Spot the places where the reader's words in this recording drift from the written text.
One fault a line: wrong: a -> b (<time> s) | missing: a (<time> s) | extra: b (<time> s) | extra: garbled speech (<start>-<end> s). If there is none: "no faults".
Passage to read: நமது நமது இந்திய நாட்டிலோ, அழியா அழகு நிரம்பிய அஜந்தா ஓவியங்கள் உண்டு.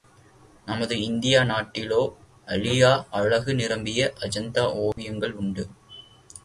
missing: நமது (1.0 s)